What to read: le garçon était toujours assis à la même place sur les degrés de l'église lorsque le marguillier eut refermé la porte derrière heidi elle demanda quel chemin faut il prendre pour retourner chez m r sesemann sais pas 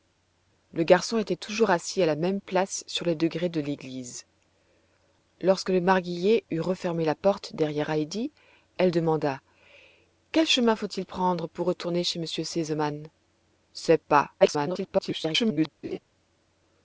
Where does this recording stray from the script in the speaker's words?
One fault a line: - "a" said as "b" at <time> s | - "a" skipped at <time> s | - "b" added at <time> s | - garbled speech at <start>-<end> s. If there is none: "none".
- garbled speech at 14.4-15.7 s